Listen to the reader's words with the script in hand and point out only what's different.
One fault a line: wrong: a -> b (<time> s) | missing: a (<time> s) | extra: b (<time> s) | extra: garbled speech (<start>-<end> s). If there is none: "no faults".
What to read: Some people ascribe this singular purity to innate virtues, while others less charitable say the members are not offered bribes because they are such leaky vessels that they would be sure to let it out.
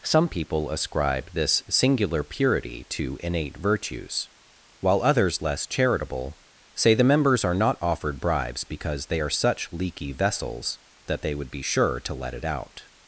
no faults